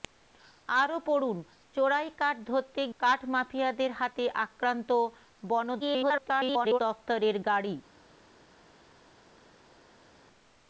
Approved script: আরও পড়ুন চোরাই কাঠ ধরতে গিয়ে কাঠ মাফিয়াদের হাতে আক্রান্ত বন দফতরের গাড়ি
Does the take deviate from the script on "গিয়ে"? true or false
true